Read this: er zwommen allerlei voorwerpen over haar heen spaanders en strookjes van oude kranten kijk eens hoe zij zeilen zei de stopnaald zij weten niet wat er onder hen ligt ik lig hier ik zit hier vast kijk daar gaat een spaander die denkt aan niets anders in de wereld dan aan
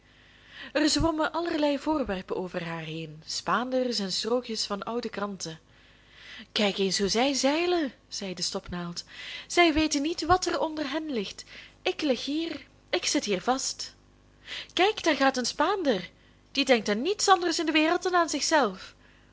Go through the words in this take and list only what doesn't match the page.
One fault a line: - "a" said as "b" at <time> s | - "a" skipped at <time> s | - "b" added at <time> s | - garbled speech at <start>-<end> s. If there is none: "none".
none